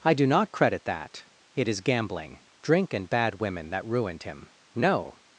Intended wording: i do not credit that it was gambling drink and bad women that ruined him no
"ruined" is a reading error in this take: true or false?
false